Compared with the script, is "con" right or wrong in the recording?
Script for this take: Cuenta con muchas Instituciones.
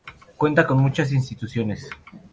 right